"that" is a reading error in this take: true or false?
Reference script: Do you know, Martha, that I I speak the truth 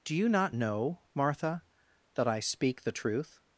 false